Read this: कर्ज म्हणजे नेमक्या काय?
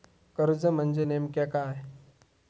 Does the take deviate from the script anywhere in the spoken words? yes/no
no